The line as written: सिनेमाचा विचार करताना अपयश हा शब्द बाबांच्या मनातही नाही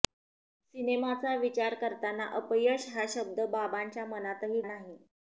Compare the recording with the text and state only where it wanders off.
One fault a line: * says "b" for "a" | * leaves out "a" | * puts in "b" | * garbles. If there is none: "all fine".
all fine